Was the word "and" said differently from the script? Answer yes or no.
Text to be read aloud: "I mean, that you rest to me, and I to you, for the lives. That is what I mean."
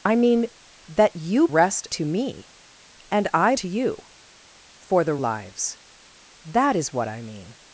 no